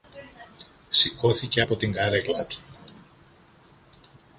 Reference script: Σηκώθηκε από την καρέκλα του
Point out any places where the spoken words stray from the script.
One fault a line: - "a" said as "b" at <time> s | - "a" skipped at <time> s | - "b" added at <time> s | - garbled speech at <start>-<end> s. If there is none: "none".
none